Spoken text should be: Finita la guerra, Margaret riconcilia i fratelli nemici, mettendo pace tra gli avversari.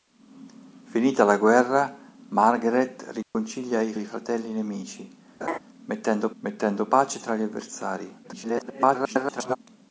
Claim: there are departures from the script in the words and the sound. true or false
true